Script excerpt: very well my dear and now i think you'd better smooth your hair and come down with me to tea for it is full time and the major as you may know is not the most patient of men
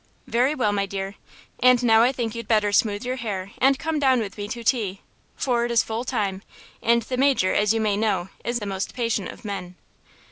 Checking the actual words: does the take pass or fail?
fail